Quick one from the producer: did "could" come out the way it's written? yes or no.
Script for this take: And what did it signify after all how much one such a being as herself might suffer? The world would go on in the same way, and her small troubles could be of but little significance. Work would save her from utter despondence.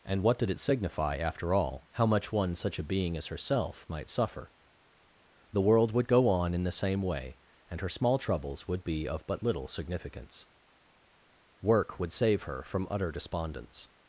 no